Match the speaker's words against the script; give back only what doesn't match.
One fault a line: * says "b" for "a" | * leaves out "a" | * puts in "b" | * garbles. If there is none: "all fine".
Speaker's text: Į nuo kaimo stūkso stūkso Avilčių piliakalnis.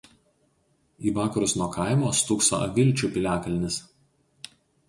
* puts in "vakarus"
* leaves out "stūkso"